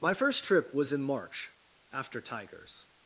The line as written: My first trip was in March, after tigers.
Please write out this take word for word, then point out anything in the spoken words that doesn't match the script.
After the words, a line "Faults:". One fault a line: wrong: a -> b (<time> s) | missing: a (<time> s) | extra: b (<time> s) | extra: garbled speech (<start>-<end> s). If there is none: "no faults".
My first trip was in March, after tigers.
Faults:
no faults